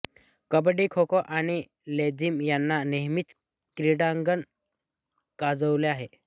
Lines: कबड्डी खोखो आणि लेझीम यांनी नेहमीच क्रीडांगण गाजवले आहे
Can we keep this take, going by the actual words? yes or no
yes